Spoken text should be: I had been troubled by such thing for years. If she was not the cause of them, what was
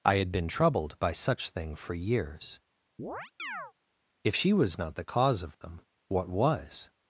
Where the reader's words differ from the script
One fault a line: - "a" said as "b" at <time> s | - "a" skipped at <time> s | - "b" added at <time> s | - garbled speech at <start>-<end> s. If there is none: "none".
none